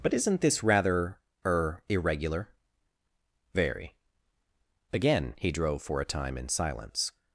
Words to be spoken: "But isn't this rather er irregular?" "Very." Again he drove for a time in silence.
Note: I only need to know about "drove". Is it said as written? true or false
true